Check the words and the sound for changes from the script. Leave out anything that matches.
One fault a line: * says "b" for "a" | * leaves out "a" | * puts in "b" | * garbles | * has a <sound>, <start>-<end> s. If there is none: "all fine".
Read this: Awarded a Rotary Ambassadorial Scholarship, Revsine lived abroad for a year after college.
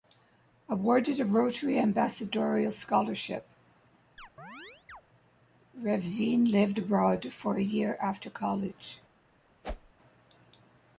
* has a chirp, 4.2-5.0 s
* has a whoosh, 9.6-9.9 s